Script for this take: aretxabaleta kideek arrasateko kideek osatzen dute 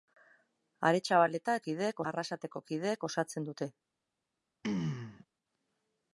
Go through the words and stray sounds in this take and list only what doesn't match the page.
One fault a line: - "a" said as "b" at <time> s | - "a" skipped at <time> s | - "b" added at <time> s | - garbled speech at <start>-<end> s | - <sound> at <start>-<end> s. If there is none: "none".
- throat clearing at 4.6-5.3 s